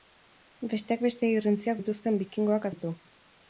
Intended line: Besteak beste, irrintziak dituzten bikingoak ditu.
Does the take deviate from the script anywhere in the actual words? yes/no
no